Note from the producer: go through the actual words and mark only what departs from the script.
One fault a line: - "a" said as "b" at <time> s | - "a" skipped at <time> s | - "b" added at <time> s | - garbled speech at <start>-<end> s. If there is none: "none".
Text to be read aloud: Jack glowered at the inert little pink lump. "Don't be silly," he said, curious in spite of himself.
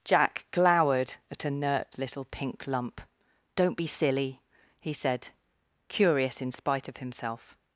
- "the" said as "a" at 1.4 s